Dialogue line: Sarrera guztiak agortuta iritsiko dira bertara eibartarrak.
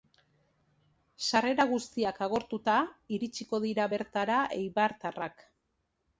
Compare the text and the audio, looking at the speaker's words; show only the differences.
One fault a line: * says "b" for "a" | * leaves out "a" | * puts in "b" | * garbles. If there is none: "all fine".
all fine